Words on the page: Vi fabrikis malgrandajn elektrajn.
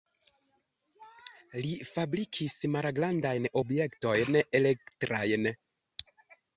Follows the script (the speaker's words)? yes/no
no